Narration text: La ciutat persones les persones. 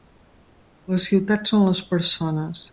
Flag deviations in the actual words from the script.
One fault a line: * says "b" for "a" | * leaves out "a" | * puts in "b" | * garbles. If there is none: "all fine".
* says "són" for "persones"